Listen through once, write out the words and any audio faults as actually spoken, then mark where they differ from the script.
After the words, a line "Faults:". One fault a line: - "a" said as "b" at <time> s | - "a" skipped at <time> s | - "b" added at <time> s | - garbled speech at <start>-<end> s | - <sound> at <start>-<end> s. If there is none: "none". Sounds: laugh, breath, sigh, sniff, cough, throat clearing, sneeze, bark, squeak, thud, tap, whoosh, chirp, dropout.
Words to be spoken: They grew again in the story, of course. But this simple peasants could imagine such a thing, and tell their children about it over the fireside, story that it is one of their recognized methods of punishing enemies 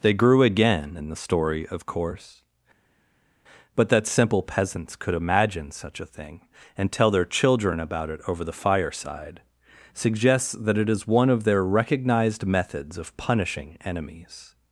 They grew again in the story, of course. But that simple peasants could imagine such a thing, and tell their children about it over the fireside, suggests that it is one of their recognized methods of punishing enemies
Faults:
- "this" said as "that" at 3.9 s
- "story" said as "suggests" at 9.9 s